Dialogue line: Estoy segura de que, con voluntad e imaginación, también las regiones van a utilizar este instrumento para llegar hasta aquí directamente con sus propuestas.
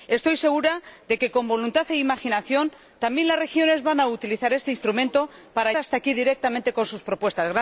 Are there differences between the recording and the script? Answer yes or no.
yes